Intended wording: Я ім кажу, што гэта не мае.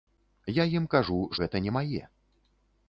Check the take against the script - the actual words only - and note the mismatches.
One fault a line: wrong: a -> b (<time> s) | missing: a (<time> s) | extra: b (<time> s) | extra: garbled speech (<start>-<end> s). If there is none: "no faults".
missing: што (1.2 s)